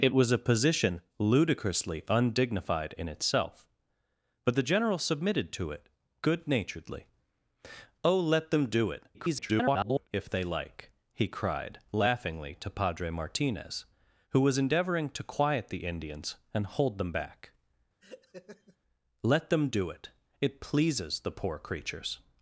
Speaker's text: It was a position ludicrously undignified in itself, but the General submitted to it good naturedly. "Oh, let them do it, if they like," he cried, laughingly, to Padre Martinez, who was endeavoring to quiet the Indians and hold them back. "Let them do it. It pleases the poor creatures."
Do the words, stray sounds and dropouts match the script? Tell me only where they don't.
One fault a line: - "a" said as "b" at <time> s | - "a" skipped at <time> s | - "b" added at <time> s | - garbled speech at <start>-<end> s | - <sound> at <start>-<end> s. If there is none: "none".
- garbled speech at 9.1-10.1 s
- laugh at 18.0-18.8 s